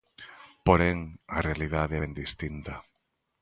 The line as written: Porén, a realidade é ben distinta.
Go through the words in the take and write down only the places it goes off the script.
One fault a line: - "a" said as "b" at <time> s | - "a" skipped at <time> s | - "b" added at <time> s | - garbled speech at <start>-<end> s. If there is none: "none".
none